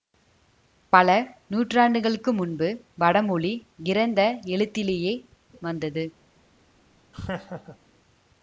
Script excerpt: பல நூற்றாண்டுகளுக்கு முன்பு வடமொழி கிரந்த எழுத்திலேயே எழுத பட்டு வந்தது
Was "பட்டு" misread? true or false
true